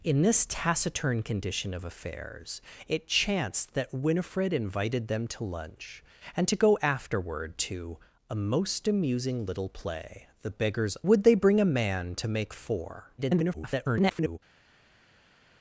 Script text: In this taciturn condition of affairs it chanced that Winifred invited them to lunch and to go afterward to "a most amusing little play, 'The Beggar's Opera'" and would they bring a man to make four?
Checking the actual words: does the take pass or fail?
fail